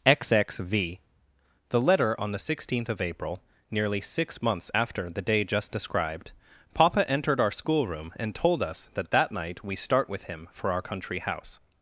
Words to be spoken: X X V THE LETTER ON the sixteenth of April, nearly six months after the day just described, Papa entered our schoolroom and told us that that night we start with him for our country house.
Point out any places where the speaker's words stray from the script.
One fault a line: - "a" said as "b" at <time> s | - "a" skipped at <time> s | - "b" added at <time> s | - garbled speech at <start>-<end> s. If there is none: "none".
none